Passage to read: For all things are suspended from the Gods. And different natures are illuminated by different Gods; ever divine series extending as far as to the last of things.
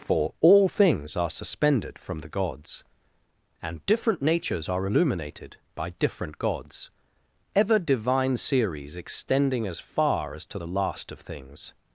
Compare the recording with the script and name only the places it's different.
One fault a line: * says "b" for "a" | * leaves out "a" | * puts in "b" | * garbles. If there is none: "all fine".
all fine